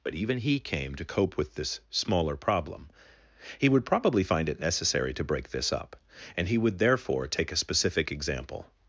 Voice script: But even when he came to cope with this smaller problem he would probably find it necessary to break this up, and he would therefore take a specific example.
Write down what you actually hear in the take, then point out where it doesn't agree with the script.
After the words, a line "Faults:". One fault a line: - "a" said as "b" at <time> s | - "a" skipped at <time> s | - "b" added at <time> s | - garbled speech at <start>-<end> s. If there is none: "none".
But even he came to cope with this smaller problem he would probably find it necessary to break this up, and he would therefore take a specific example.
Faults:
- "when" skipped at 0.4 s